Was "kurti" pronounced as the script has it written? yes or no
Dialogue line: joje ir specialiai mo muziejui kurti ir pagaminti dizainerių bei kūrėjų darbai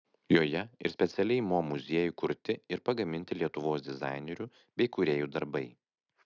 yes